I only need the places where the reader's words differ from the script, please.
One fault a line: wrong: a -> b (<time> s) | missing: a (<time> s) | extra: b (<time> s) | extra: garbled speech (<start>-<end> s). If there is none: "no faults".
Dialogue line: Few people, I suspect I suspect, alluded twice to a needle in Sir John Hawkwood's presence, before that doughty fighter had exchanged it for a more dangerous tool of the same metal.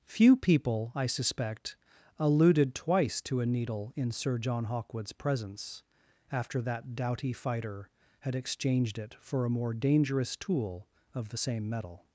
missing: I suspect (1.8 s)
wrong: before -> after (6.3 s)